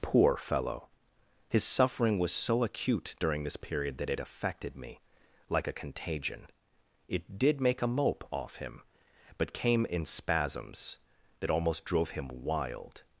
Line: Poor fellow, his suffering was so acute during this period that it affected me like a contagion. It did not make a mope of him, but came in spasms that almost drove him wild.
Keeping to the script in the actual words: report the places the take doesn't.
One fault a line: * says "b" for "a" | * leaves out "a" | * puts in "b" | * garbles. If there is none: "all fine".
* leaves out "not"
* says "off" for "of"